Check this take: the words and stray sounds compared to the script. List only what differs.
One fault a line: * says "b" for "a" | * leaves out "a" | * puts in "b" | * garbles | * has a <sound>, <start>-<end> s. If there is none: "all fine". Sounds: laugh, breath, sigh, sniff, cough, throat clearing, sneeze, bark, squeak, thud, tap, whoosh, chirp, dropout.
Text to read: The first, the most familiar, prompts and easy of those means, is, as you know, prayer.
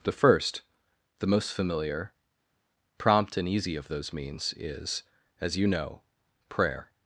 * says "prompt" for "prompts"